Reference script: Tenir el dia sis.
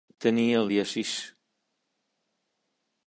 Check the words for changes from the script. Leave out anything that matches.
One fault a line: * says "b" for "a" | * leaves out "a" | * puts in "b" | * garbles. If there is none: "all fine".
all fine